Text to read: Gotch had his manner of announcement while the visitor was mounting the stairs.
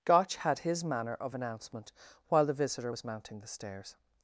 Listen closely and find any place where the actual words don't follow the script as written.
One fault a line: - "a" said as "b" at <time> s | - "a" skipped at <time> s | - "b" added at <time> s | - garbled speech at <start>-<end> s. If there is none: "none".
none